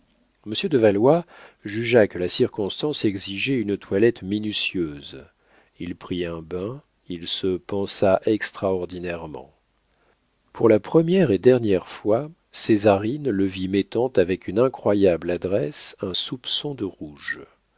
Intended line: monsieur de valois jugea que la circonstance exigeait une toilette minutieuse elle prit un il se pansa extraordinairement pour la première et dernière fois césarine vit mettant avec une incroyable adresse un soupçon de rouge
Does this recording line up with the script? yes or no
no